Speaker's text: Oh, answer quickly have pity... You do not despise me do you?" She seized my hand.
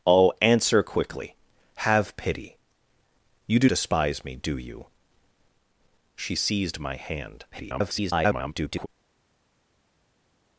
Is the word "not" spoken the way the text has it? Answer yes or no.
no